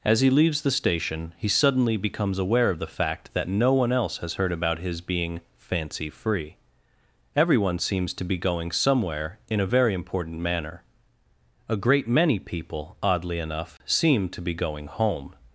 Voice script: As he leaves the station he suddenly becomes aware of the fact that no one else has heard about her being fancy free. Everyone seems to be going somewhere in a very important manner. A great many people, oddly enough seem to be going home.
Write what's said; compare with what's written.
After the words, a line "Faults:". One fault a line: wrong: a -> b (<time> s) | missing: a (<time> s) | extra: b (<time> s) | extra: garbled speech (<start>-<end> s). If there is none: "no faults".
As he leaves the station he suddenly becomes aware of the fact that no one else has heard about his being fancy free. Everyone seems to be going somewhere in a very important manner. A great many people, oddly enough seem to be going home.
Faults:
wrong: her -> his (4.8 s)